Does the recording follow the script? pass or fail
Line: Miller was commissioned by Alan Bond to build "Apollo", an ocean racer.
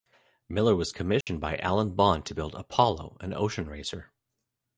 pass